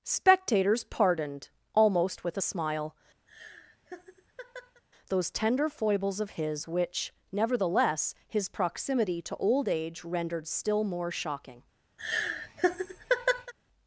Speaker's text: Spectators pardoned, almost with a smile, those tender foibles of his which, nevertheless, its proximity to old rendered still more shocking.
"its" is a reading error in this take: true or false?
true